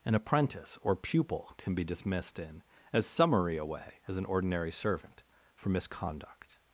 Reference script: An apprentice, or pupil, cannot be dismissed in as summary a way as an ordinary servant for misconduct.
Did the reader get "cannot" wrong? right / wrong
wrong